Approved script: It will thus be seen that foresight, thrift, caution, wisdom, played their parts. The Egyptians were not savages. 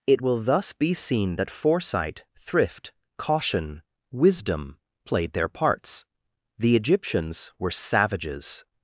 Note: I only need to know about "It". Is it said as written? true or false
true